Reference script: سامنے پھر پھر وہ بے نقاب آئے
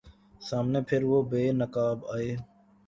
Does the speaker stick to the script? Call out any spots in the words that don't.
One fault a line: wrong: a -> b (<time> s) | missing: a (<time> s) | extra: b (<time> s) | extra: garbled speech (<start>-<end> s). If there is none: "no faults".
missing: پھر (1.0 s)